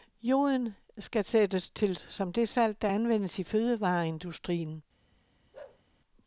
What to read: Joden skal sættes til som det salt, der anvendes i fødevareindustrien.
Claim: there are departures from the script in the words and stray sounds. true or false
true